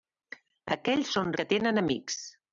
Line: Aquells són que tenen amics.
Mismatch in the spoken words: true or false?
false